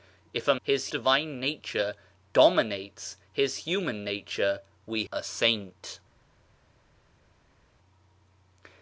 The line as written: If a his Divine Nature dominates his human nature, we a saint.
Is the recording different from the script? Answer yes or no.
no